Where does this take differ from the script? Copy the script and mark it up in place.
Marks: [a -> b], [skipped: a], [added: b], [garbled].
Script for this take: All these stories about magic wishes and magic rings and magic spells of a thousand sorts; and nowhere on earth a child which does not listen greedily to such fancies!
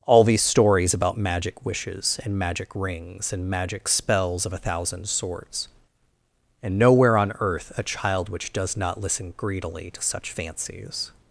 All these stories about magic wishes and magic rings and magic spells of a thousand sorts; and nowhere on earth a child which does not listen greedily to such fancies!